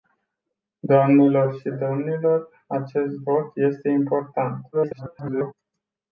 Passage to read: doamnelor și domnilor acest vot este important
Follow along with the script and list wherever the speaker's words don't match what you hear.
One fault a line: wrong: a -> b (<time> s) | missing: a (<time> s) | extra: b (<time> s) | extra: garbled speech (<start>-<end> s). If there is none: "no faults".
extra: garbled speech (4.7-5.5 s)